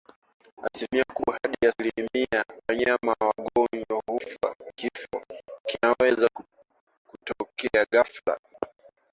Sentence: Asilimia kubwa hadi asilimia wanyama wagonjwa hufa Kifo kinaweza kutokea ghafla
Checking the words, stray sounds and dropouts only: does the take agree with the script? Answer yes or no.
yes